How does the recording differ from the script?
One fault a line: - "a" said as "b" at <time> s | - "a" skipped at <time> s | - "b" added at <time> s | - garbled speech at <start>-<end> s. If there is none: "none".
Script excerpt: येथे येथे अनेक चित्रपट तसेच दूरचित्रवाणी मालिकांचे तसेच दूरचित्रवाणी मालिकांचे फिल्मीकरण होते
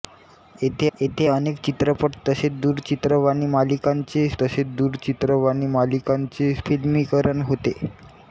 none